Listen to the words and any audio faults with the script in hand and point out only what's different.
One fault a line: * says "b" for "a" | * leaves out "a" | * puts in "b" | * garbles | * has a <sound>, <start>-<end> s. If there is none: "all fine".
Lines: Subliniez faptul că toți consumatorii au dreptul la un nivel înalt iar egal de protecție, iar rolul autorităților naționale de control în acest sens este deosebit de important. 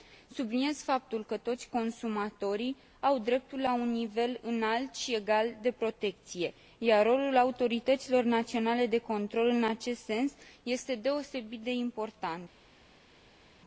* says "și" for "iar"